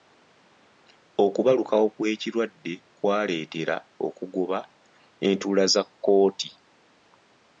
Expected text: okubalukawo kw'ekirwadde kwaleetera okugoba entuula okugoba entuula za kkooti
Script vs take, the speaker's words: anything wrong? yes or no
yes